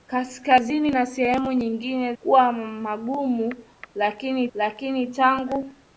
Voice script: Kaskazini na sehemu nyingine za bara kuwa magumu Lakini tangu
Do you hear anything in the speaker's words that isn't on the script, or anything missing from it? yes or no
yes